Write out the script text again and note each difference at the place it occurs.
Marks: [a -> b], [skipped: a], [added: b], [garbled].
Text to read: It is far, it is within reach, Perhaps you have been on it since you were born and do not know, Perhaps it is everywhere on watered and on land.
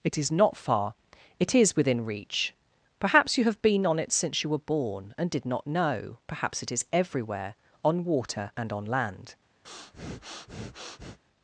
It is [added: not] far, it is within reach, Perhaps you have been on it since you were born and [do -> did] not know, Perhaps it is everywhere on [watered -> water] and on land.